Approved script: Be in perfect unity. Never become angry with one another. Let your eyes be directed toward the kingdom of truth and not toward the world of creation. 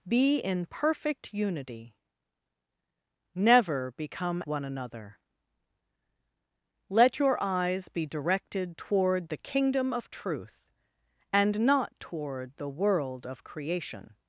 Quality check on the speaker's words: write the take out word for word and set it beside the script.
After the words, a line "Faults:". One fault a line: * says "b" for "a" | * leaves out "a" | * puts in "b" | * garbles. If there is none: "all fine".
Be in perfect unity. Never become one another. Let your eyes be directed toward the kingdom of truth and not toward the world of creation.
Faults:
* leaves out "angry with"